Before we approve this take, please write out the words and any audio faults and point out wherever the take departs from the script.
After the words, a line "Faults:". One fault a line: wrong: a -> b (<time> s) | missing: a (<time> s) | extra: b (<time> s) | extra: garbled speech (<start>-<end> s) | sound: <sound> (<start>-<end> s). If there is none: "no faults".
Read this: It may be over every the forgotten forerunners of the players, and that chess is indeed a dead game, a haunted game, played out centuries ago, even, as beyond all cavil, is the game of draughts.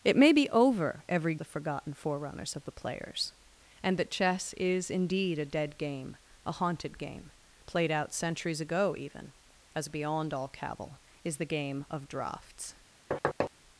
It may be over every the forgotten forerunners of the players, and that chess is indeed a dead game, a haunted game, played out centuries ago, even, as beyond all cavil, is the game of draughts.
Faults:
sound: thud (13.1-13.5 s)